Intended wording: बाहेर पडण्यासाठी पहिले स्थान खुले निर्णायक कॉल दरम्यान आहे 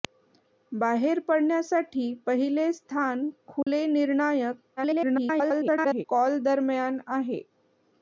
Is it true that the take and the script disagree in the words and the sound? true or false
true